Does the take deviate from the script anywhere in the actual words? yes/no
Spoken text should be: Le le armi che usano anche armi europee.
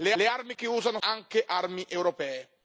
no